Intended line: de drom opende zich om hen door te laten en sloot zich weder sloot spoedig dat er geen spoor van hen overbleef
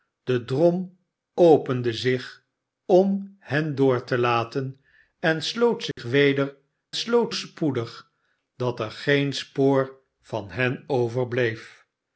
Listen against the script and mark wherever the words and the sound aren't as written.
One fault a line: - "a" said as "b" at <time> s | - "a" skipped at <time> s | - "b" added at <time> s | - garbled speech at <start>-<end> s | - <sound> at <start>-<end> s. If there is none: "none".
- dropout at 5.9-6.0 s